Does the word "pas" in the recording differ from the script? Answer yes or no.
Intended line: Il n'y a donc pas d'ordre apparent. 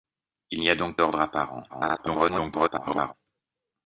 yes